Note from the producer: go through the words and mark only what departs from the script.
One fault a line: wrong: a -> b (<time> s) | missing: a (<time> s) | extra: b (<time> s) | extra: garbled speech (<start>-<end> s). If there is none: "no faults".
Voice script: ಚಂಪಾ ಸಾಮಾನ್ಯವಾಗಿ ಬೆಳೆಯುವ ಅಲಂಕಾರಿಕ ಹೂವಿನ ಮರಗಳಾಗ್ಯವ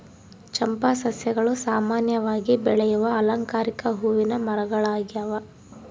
extra: ಸಸ್ಯಗಳು (1.0 s)